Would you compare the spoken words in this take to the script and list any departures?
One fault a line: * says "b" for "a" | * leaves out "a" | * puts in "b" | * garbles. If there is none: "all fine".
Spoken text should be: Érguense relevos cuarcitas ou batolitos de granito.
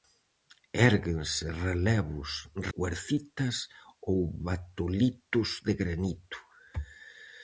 all fine